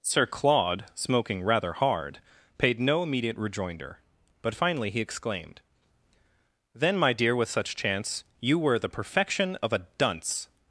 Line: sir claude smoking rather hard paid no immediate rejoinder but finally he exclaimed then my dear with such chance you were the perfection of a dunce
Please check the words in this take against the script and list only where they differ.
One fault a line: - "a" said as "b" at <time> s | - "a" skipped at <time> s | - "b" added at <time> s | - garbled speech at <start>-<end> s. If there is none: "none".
none